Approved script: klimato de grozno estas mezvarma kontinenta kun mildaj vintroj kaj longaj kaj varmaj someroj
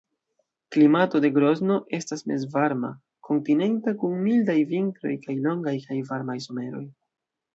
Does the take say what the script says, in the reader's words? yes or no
yes